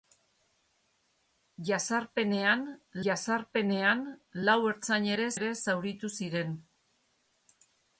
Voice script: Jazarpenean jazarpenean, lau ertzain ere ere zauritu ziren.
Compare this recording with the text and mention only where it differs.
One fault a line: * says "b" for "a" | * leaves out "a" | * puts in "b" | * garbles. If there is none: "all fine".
all fine